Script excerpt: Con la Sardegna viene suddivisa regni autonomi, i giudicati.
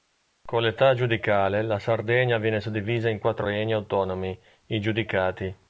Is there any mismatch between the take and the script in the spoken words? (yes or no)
yes